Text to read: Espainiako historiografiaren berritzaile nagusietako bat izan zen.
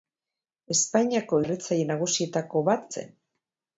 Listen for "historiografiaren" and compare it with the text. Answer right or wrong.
wrong